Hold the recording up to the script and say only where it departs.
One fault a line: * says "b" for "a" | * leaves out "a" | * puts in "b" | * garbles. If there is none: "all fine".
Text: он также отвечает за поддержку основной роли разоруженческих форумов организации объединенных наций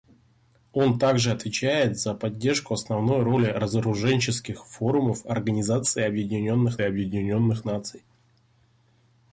* puts in "объединенных"